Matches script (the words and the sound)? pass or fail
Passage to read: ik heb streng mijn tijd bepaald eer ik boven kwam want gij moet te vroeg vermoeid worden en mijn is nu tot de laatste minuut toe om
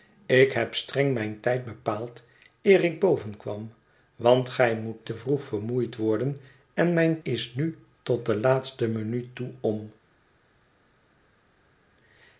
pass